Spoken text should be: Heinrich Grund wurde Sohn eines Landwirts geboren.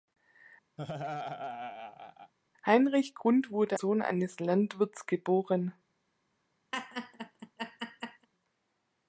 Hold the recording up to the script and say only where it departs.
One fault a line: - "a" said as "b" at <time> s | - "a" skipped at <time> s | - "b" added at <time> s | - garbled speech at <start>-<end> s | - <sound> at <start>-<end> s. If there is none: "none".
- laugh at 0.8-2.3 s
- laugh at 6.7-8.3 s